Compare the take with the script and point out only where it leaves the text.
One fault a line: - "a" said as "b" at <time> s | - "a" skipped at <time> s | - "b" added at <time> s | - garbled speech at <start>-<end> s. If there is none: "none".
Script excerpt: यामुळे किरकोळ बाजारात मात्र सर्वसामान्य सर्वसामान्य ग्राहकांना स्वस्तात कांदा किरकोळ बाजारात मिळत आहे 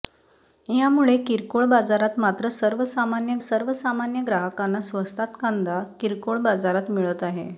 none